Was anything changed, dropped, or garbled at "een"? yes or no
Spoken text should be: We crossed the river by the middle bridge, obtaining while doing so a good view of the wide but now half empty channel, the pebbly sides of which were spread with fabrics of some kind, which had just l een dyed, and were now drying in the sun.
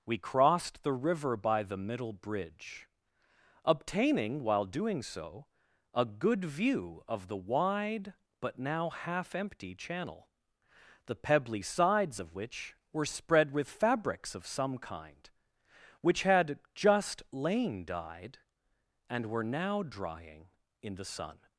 yes